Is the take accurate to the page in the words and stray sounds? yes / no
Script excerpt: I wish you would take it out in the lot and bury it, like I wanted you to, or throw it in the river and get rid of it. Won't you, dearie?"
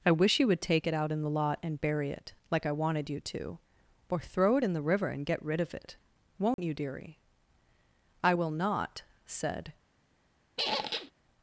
no